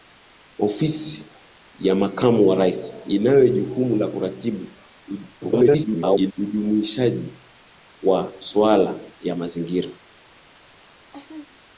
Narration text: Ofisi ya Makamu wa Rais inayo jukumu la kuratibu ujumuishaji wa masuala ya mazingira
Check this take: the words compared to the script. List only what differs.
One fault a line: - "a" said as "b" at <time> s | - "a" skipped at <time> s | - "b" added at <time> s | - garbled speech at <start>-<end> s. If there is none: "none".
- garbled speech at 5.4-6.3 s